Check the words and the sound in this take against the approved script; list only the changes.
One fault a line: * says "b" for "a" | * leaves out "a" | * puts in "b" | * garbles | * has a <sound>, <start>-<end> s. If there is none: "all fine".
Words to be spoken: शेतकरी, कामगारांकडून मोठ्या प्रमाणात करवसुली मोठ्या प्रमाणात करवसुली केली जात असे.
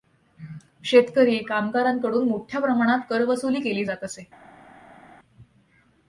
* leaves out "मोठ्या प्रमाणात करवसुली"